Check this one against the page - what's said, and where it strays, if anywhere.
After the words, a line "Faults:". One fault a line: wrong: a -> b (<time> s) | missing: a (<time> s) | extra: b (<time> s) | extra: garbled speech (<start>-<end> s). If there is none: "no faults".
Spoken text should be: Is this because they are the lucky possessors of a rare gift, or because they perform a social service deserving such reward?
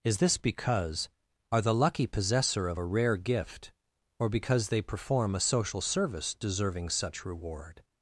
Is this because are the lucky possessor of a rare gift, or because they perform a social service deserving such reward?
Faults:
missing: they (1.1 s)
wrong: possessors -> possessor (2.1 s)